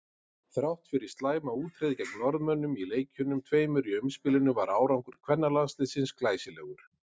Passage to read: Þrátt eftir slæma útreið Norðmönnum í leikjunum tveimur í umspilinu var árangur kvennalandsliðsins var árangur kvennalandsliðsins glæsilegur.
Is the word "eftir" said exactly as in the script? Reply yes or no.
no